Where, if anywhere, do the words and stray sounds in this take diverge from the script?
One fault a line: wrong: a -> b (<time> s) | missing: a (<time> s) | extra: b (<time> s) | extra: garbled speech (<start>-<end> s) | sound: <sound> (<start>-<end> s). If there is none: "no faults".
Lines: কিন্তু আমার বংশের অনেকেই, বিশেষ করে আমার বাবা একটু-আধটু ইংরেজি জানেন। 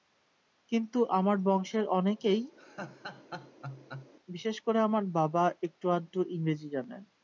sound: laugh (2.6-4.1 s)